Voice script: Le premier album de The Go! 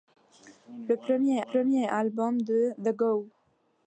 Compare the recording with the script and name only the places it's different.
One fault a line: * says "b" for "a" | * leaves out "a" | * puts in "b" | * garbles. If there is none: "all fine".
* puts in "premier"